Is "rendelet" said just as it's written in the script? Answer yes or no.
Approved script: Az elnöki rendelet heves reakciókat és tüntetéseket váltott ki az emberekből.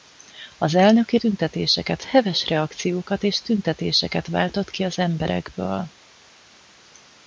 no